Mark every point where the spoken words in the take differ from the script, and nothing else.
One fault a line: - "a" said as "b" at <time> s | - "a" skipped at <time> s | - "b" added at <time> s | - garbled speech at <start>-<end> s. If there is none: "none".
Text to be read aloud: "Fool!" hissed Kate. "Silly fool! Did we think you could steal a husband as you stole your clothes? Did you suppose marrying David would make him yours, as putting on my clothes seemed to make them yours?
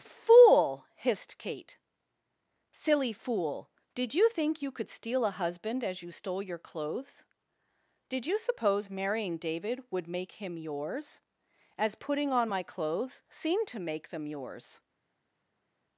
- "we" said as "you" at 4.2 s